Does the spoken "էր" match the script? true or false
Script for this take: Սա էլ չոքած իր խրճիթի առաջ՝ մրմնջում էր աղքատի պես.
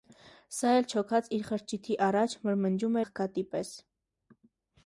false